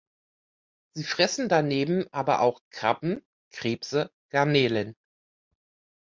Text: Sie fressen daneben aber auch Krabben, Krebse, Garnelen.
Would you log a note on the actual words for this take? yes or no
no